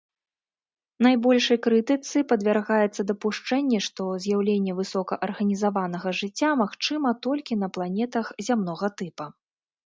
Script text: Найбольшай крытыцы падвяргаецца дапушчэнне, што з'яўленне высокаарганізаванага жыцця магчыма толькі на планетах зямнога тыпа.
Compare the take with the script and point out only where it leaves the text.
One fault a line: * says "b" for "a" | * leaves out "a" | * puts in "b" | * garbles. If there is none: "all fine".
all fine